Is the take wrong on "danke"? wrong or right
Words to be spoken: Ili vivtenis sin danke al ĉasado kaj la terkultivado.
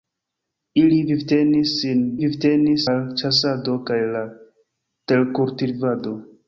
wrong